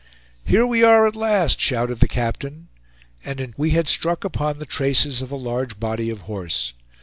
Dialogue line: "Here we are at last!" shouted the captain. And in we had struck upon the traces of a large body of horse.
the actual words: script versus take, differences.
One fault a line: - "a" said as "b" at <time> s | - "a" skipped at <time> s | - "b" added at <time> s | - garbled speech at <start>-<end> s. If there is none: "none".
none